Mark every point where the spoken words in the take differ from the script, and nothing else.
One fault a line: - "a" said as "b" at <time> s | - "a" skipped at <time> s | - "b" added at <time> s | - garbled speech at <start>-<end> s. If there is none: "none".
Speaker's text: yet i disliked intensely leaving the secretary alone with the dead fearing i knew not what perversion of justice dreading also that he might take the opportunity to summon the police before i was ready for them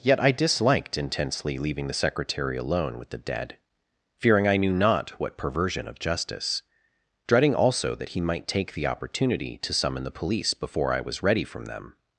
- "for" said as "from" at 11.4 s